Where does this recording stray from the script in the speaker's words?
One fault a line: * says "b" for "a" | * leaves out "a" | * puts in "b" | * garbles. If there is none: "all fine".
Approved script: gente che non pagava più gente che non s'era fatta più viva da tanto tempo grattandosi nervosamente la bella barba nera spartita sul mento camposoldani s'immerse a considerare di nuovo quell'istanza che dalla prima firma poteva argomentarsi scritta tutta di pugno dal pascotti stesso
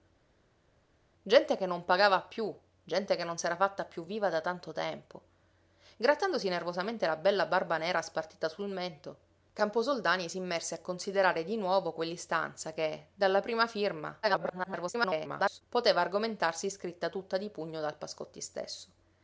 * garbles